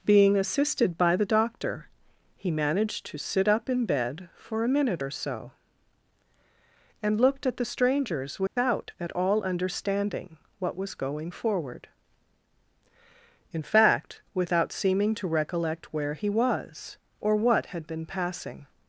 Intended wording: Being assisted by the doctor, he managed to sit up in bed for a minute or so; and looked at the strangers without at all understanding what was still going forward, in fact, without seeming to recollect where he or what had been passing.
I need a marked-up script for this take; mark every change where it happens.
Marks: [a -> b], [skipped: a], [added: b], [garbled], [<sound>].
Being assisted by the doctor, he managed to sit up in bed for a minute or so; and looked at the strangers without [dropout] at all understanding what was [skipped: still] going forward, in fact, without seeming to recollect where he [added: was] or what had been passing.